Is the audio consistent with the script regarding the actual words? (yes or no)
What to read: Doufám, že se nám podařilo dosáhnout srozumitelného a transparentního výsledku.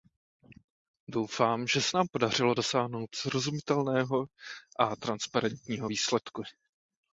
yes